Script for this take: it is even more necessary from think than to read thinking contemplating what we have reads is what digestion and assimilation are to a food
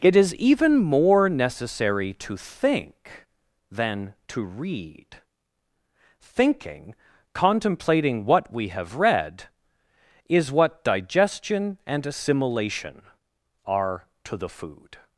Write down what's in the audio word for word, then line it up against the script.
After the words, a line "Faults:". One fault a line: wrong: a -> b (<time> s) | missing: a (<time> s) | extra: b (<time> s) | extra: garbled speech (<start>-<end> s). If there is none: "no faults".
it is even more necessary to think than to read thinking contemplating what we have read is what digestion and assimilation are to the food
Faults:
wrong: from -> to (2.1 s)
wrong: reads -> read (8.9 s)
wrong: a -> the (14.4 s)